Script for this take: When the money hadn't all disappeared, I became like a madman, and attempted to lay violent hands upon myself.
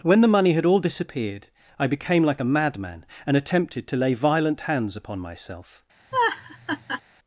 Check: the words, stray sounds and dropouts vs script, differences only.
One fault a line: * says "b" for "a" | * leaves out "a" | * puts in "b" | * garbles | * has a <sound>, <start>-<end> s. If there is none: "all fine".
* says "had" for "hadn't"
* has a laugh, 6.1-7.0 s